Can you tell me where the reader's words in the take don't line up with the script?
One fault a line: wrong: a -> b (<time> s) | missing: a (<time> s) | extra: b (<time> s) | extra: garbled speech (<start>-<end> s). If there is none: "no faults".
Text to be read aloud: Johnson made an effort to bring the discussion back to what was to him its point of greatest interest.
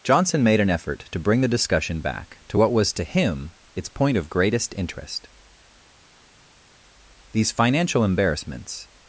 extra: These financial embarrassments (7.3 s)